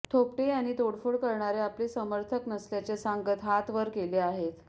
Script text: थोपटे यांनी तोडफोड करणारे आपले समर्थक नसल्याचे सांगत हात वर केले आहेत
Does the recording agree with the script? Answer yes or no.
yes